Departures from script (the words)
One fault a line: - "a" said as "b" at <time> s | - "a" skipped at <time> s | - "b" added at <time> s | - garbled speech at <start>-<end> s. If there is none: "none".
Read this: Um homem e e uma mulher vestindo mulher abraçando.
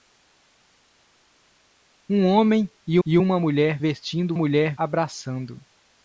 none